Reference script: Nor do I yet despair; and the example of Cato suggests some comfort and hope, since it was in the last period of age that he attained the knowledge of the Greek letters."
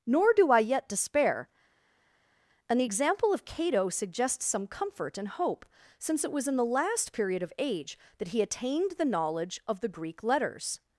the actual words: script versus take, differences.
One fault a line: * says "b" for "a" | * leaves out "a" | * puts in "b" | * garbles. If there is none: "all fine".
all fine